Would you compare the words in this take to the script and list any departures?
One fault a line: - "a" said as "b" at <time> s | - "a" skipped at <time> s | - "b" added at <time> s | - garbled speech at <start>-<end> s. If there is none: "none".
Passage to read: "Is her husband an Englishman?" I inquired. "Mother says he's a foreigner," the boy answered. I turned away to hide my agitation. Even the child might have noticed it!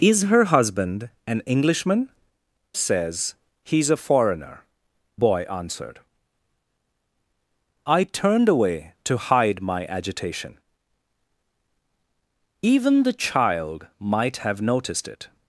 - "I inquired Mother" skipped at 2.1 s
- "the" skipped at 4.6 s